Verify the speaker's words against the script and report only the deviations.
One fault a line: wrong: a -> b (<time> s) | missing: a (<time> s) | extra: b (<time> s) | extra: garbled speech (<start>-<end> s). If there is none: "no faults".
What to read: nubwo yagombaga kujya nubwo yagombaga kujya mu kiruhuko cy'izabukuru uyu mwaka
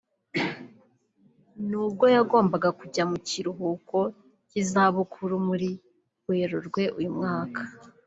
missing: nubwo yagombaga kujya (3.0 s)
extra: muri Werurwe (5.5 s)